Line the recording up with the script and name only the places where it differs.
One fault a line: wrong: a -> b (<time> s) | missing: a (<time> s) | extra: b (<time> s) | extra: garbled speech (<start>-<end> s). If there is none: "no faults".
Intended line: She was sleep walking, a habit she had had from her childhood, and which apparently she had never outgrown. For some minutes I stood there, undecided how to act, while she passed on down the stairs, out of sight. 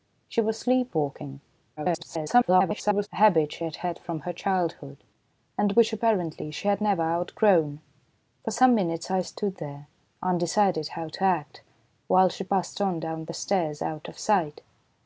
extra: garbled speech (1.8-3.1 s)